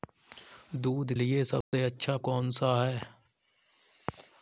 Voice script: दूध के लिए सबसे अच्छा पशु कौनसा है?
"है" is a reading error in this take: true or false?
false